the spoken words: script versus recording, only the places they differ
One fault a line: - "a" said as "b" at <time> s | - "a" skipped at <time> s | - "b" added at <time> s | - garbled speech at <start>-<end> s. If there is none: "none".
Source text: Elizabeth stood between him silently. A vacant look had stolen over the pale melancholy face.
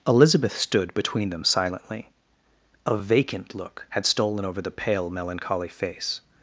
- "him" said as "them" at 1.3 s